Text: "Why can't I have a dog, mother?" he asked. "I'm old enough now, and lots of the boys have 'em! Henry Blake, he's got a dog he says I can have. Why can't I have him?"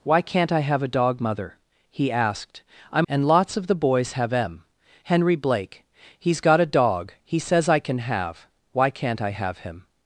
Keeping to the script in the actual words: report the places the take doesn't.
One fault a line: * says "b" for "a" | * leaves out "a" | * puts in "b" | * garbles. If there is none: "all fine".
* leaves out "old enough now"